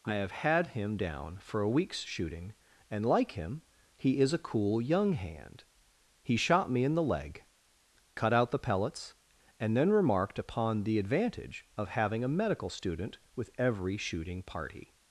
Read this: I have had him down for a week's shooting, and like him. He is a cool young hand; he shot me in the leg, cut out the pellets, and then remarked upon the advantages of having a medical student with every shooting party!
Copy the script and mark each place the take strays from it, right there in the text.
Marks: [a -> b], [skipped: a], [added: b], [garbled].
I have had him down for a week's shooting, and like him. He is a cool young hand; he shot me in the leg, cut out the pellets, and then remarked upon the [advantages -> advantage] of having a medical student with every shooting party!